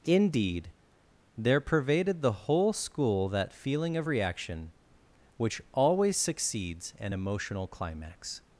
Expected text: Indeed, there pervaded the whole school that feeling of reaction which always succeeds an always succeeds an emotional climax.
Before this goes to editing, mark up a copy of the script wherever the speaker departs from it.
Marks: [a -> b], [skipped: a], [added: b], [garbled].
Indeed, there pervaded the whole school that feeling of reaction which always succeeds an [skipped: always succeeds an] emotional climax.